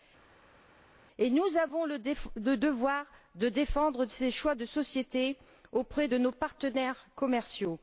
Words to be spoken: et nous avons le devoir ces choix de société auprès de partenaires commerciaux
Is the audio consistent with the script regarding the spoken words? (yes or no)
no